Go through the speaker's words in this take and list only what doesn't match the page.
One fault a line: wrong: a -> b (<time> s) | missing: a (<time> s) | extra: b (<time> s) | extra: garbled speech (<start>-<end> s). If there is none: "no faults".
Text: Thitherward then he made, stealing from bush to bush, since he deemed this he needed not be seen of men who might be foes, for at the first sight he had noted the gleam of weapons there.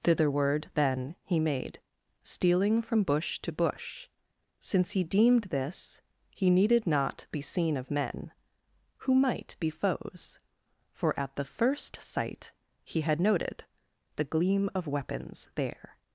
no faults